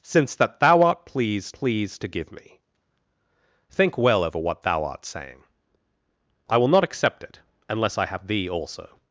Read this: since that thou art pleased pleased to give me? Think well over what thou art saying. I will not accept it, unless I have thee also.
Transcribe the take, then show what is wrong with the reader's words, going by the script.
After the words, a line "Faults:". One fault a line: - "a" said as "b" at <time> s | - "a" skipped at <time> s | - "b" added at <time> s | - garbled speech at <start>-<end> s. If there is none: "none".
since that thou art pleased pleased to give me? Think well over what thou art saying. I will not accept it, unless I have thee also.
Faults:
none